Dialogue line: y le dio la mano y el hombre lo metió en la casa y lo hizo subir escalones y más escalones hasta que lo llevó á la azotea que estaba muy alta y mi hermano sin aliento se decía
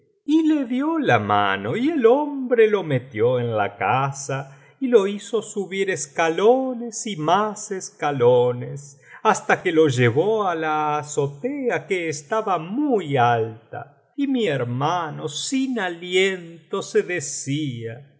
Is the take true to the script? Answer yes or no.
yes